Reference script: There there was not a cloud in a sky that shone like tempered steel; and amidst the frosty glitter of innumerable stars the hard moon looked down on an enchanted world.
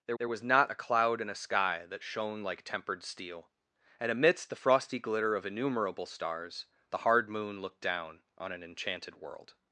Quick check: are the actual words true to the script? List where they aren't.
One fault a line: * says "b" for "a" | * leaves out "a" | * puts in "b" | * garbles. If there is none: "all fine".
all fine